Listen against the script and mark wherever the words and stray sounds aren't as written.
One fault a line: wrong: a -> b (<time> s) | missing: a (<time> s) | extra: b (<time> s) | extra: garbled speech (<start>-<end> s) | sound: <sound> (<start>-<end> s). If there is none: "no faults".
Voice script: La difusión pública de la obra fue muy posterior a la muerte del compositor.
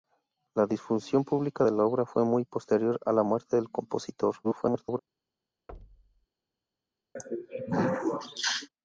extra: garbled speech (4.4-5.0 s)
sound: thud (5.7-6.3 s)
sound: throat clearing (7.2-8.7 s)